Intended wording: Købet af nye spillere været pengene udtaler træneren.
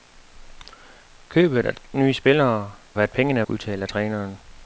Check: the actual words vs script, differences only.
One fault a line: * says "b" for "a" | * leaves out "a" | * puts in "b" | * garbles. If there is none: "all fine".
all fine